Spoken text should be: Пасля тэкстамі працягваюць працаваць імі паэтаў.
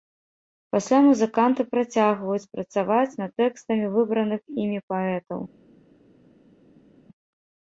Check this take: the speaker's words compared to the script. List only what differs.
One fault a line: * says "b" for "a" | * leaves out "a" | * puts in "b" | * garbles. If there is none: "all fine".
* says "музыканты" for "тэкстамі"
* puts in "над тэкстамі выбраных"